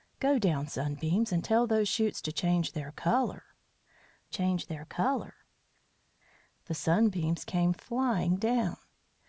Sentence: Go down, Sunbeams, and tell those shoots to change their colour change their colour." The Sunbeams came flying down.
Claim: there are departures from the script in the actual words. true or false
false